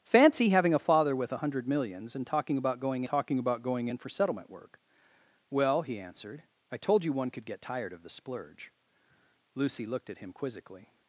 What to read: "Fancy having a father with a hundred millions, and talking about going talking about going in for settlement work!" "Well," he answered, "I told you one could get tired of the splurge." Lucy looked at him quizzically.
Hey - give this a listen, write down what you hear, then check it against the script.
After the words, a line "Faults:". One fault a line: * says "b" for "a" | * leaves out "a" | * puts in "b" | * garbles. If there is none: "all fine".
"Fancy having a father with a hundred millions, and talking about going talking about going in for settlement work!" "Well," he answered, "I told you one could get tired of the splurge." Lucy looked at him quizzically.
Faults:
all fine